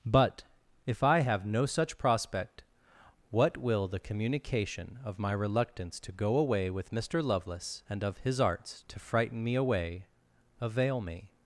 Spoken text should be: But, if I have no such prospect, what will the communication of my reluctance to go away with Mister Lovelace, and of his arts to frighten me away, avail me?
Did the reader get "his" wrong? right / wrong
right